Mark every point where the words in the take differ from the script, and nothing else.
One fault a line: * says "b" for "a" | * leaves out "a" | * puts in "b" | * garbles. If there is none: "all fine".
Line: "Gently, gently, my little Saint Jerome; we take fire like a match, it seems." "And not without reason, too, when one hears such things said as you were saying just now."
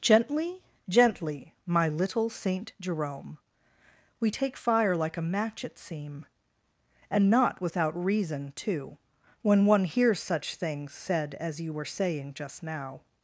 * says "seem" for "seems"